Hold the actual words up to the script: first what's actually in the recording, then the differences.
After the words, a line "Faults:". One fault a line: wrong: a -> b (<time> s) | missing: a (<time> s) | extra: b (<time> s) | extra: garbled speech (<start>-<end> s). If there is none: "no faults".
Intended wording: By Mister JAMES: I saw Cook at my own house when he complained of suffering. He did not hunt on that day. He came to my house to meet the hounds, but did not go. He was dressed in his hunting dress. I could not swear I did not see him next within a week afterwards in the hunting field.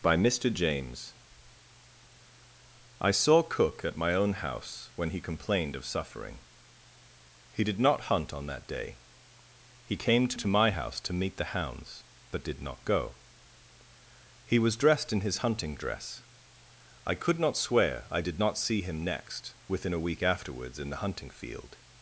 By Mister JAMES: I saw Cook at my own house when he complained of suffering. He did not hunt on that day. He came to to my house to meet the hounds, but did not go. He was dressed in his hunting dress. I could not swear I did not see him next within a week afterwards in the hunting field.
Faults:
extra: to (10.4 s)